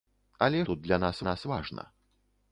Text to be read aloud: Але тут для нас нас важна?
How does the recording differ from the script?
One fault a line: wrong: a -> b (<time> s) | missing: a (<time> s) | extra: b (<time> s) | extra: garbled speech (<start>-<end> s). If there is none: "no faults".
no faults